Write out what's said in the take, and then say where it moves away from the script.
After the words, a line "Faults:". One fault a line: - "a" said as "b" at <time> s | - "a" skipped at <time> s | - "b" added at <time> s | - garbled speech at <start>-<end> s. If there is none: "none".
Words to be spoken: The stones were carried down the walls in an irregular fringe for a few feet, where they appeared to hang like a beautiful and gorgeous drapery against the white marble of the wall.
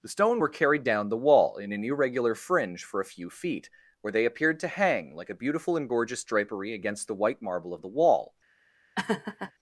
The stone were carried down the wall in an irregular fringe for a few feet, where they appeared to hang like a beautiful and gorgeous drapery against the white marble of the wall.
Faults:
- "stones" said as "stone" at 0.1 s
- "walls" said as "wall" at 1.2 s